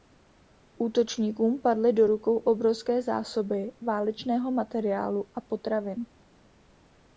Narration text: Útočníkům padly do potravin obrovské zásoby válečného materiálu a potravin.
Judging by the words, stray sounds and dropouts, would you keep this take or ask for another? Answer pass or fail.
fail